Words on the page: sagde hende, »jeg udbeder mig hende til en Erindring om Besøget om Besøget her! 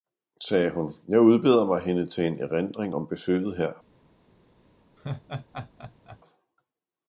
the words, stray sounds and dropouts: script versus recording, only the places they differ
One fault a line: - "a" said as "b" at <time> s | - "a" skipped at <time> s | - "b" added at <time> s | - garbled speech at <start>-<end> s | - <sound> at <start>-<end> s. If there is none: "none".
- "hende" said as "hun" at 0.7 s
- "om Besøget" skipped at 3.6 s
- laugh at 5.0-6.2 s